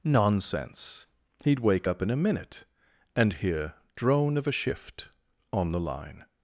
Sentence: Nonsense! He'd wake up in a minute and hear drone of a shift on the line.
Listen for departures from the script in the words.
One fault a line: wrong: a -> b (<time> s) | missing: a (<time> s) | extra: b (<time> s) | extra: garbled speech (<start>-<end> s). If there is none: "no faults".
no faults